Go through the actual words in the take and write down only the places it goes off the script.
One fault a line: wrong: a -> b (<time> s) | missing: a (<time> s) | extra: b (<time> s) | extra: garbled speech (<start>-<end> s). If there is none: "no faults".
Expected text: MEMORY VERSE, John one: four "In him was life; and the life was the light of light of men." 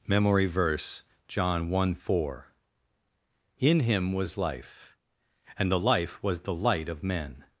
missing: light of (7.0 s)